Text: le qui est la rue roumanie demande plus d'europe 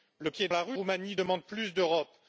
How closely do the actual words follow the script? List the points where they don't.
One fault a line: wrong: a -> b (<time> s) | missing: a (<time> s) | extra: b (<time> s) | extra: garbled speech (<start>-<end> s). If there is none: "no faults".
no faults